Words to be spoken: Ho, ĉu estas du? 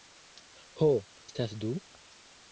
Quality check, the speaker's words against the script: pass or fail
fail